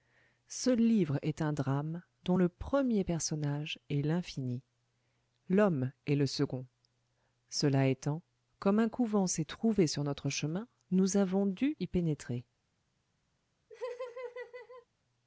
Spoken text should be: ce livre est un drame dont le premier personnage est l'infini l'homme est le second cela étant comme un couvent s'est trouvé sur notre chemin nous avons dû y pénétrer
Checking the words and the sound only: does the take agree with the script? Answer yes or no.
no